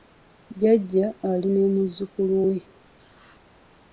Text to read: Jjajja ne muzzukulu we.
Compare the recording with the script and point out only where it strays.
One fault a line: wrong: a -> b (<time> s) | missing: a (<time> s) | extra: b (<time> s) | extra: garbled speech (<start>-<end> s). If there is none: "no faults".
extra: ali (1.3 s)